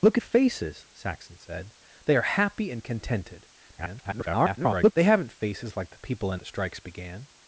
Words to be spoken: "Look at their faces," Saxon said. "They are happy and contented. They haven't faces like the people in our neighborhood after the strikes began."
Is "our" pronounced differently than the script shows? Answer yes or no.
yes